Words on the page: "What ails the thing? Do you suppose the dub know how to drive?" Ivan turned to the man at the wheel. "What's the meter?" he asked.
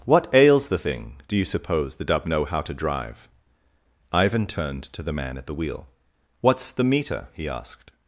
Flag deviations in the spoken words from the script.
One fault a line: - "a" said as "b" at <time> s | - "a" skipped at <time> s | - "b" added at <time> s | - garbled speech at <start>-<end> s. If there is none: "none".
none